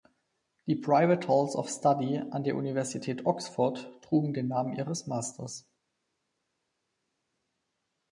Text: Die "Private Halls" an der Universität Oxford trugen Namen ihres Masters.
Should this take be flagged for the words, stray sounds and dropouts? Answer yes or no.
yes